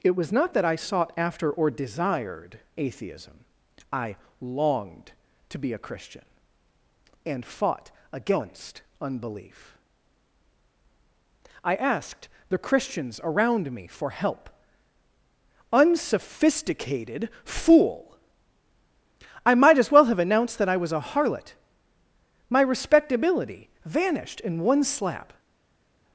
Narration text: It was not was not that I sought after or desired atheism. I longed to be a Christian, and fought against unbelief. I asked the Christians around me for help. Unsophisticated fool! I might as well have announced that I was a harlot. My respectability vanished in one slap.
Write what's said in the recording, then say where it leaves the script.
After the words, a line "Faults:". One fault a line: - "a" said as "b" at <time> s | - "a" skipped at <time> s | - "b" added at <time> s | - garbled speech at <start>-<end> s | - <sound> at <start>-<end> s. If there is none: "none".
It was not that I sought after or desired atheism. I longed to be a Christian, and fought against unbelief. I asked the Christians around me for help. Unsophisticated fool! I might as well have announced that I was a harlot. My respectability vanished in one slap.
Faults:
- "was not" skipped at 0.5 s